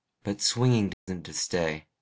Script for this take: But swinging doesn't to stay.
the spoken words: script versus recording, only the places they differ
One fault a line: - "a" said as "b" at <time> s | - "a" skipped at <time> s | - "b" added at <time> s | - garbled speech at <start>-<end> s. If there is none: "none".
none